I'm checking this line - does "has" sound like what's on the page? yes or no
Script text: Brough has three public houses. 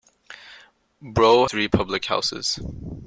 no